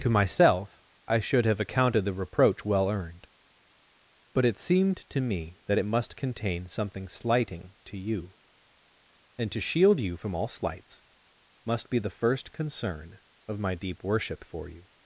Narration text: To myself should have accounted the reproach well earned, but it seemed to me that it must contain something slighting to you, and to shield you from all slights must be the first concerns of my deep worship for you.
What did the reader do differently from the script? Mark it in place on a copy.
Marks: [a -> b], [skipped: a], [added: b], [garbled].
To myself [added: I] should have accounted the reproach well earned, but it seemed to me that it must contain something slighting to you, and to shield you from all slights must be the first [concerns -> concern] of my deep worship for you.